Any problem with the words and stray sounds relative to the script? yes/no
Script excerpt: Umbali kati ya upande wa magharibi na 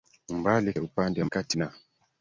yes